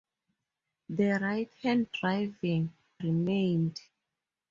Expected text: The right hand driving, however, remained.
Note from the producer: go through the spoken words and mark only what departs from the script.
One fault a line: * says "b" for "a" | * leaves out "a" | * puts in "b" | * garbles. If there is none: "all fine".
* leaves out "however"